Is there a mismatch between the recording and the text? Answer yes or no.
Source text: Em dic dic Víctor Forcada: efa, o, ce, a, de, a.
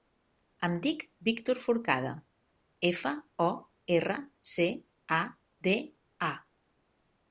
yes